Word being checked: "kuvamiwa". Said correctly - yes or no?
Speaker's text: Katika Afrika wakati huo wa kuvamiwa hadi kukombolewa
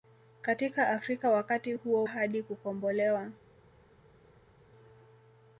no